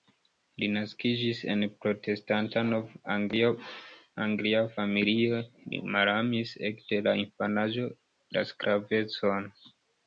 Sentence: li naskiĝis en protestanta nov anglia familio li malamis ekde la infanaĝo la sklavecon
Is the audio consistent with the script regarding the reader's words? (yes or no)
yes